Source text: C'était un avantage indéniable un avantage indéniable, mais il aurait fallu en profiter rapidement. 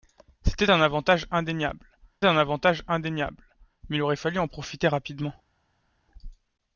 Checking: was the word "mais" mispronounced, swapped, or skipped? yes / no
no